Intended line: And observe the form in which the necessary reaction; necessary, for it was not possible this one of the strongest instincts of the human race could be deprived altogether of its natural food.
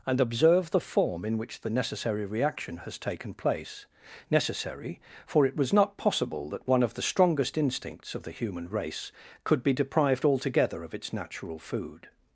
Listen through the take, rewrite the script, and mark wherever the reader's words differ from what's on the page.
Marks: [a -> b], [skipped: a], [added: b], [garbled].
And observe the form in which the necessary reaction; [added: has taken place] necessary, for it was not possible [this -> that] one of the strongest instincts of the human race could be deprived altogether of its natural food.